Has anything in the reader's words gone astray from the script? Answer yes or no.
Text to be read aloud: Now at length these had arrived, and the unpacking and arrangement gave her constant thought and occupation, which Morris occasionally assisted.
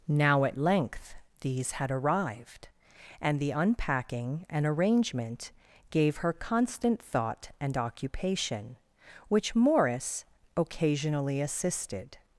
no